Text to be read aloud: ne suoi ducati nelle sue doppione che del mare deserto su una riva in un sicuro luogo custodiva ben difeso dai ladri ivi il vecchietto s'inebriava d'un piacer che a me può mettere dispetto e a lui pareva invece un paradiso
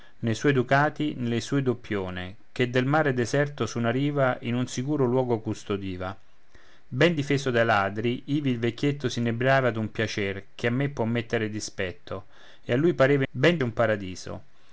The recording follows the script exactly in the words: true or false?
false